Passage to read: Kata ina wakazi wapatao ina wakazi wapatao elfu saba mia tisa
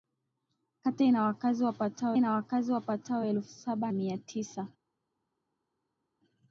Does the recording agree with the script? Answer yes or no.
yes